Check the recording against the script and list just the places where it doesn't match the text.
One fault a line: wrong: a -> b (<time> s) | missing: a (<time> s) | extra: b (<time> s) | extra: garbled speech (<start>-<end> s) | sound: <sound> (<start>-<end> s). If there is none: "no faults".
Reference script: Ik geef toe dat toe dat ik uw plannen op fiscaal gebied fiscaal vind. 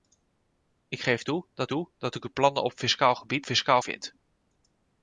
no faults